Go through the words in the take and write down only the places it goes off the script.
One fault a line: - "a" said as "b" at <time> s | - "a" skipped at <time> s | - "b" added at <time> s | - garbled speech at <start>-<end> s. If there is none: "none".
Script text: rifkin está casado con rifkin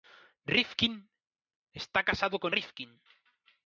none